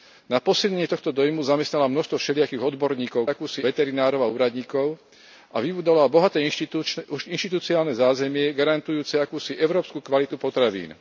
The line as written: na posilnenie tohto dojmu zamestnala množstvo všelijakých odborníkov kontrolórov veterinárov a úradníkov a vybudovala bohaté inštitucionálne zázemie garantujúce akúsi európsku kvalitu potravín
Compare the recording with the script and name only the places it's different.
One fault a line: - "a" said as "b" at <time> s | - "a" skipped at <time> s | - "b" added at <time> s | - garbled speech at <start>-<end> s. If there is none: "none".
- "kontrolórov" said as "akúsi" at 3.3 s